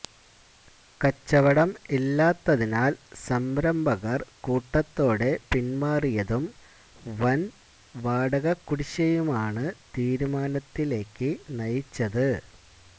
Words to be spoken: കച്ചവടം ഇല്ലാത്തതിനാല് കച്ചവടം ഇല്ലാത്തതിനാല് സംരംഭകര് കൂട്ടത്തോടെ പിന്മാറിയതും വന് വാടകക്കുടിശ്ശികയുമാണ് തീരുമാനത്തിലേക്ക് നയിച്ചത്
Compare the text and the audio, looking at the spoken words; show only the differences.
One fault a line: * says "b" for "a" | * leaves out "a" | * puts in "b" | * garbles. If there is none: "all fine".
* leaves out "കച്ചവടം ഇല്ലാത്തതിനാല്"